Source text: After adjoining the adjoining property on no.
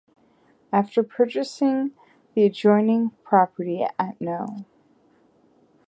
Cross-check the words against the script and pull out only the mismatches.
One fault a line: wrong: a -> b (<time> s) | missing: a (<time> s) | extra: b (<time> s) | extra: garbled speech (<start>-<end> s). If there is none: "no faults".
wrong: adjoining -> purchasing (1.0 s)
wrong: on -> at (4.0 s)